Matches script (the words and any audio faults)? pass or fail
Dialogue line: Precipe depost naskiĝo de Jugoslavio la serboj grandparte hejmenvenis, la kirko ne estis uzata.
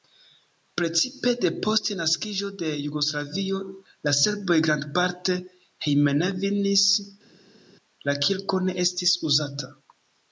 pass